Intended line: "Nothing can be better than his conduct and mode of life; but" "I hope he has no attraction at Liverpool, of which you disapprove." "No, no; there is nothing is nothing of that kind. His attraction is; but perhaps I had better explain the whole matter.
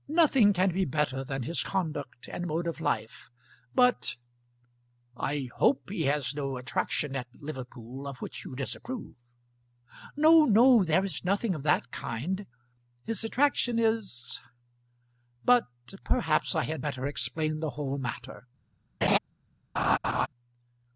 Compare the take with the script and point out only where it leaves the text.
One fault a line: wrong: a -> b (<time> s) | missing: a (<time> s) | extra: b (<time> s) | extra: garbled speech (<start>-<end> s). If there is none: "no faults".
missing: is nothing (11.5 s)